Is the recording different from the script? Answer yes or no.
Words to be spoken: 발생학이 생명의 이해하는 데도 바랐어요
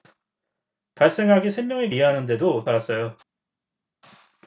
no